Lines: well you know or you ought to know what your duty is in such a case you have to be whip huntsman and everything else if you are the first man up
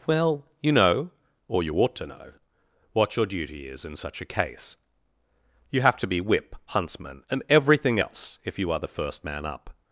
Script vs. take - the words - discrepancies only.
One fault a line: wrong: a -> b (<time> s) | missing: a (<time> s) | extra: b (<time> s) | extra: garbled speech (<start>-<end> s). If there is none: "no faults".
no faults